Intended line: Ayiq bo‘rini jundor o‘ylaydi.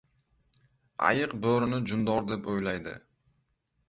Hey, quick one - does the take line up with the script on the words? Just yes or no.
no